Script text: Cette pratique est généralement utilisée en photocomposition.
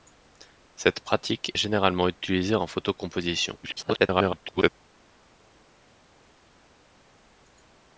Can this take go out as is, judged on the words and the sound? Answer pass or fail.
fail